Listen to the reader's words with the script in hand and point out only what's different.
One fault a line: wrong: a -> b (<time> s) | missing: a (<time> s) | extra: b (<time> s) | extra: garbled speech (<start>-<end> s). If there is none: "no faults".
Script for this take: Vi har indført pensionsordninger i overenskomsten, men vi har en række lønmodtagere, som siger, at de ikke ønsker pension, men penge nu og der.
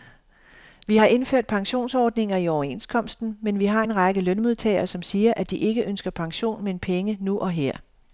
wrong: der -> her (7.5 s)